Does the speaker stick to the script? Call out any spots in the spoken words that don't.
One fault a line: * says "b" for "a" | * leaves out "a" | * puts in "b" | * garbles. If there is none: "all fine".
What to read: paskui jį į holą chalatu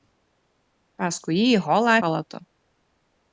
all fine